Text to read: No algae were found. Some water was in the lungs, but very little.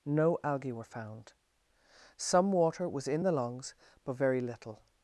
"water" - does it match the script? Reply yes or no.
yes